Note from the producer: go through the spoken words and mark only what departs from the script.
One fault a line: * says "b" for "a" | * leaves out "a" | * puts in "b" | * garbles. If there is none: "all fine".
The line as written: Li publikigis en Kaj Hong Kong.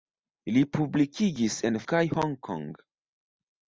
all fine